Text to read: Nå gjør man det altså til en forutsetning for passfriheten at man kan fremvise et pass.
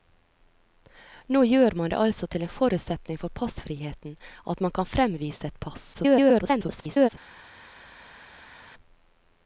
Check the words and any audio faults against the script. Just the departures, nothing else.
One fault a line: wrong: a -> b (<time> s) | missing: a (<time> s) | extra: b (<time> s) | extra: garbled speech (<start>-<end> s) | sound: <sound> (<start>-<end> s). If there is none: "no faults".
extra: garbled speech (5.9-7.1 s)